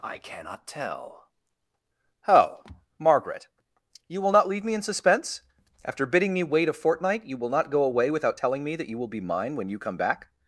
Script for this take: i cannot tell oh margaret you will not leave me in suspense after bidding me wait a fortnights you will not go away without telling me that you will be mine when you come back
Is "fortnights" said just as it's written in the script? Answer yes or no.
no